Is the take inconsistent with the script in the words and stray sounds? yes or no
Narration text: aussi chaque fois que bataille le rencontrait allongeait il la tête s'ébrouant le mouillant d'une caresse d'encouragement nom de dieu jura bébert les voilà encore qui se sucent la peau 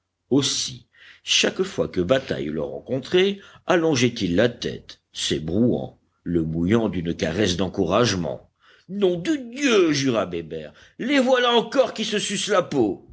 no